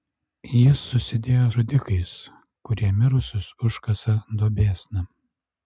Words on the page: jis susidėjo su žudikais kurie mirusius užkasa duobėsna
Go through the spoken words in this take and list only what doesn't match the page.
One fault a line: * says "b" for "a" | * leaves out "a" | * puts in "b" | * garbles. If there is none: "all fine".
* leaves out "su"